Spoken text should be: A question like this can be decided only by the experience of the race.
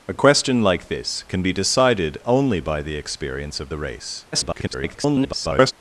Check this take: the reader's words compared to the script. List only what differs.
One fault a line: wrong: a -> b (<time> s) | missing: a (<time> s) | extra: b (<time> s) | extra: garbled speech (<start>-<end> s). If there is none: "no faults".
extra: garbled speech (4.3-5.7 s)